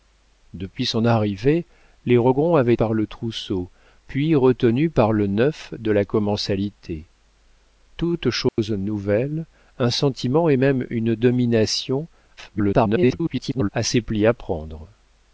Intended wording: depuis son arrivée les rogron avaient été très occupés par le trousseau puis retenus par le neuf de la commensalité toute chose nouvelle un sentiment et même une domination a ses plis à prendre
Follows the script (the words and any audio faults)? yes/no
no